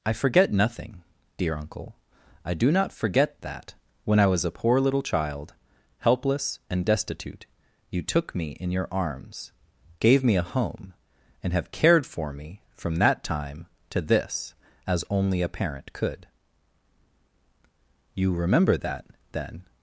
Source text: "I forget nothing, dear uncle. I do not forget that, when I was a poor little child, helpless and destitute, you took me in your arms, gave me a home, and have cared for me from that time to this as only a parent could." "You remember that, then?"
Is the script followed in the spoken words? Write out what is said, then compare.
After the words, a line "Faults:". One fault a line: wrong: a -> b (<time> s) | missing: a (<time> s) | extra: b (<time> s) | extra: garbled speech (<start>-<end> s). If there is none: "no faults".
"I forget nothing, dear uncle. I do not forget that, when I was a poor little child, helpless and destitute, you took me in your arms, gave me a home, and have cared for me from that time to this as only a parent could." "You remember that, then?"
Faults:
no faults